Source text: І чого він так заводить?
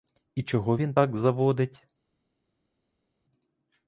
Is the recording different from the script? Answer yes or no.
no